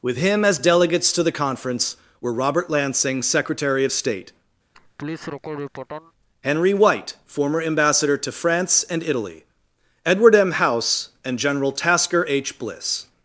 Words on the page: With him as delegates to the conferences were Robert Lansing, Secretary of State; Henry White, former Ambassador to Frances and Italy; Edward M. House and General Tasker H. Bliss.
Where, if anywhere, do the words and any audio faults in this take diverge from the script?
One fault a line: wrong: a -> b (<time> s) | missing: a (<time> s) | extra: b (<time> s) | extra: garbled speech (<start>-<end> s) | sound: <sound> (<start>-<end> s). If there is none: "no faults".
wrong: conferences -> conference (1.3 s)
sound: laugh (4.7-6.1 s)
wrong: Frances -> France (8.3 s)